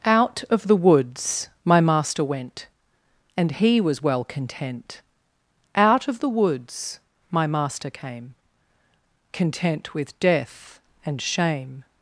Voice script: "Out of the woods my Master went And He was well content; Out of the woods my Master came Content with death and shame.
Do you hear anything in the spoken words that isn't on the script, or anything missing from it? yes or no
no